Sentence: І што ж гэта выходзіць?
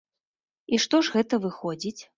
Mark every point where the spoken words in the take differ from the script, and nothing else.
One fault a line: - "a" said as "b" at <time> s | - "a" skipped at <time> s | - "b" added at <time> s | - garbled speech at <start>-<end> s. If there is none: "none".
none